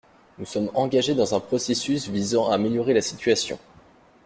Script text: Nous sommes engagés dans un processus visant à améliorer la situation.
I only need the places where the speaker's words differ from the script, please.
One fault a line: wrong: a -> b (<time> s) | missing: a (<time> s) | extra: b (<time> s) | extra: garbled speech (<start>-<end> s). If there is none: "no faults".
no faults